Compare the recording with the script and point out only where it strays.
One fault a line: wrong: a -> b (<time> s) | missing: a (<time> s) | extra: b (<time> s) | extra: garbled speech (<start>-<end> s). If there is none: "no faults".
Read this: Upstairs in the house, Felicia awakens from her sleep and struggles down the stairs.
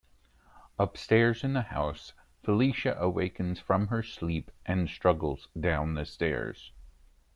no faults